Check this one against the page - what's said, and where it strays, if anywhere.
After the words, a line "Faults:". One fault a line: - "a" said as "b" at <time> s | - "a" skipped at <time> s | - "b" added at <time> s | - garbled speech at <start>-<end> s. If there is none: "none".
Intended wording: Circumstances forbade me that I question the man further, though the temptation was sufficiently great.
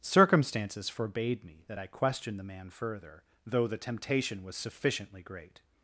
Circumstances forbade me that I question the man further, though the temptation was sufficiently great.
Faults:
none